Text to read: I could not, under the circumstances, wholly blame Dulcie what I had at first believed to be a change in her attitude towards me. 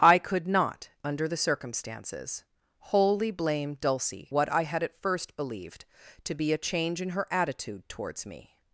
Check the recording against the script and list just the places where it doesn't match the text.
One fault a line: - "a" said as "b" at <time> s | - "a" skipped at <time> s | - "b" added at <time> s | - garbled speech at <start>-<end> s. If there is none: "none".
none